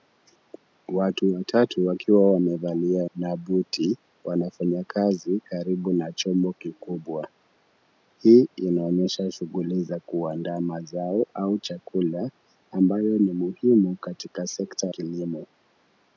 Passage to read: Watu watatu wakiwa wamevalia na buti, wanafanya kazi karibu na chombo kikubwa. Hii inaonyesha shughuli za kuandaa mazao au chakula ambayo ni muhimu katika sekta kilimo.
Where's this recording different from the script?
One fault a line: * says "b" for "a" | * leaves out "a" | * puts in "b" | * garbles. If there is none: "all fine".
all fine